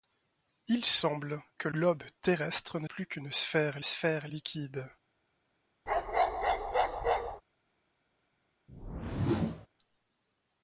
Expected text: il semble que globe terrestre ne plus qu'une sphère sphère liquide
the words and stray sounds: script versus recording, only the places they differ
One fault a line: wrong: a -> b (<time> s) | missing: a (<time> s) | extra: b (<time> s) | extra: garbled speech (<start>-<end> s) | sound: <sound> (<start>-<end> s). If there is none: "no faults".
sound: bark (5.9-7.4 s)
sound: whoosh (8.7-9.7 s)